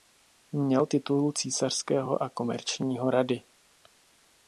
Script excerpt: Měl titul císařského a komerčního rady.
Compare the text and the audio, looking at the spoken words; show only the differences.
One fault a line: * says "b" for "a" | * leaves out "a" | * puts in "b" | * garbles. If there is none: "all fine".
all fine